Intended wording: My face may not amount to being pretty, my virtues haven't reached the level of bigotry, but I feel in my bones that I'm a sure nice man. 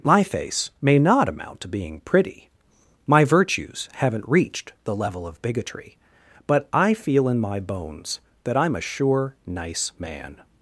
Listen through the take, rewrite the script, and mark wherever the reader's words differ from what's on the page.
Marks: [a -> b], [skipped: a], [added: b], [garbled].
My face may not amount to being pretty, my virtues haven't reached the level of bigotry, but I feel in my bones that I'm a sure nice man.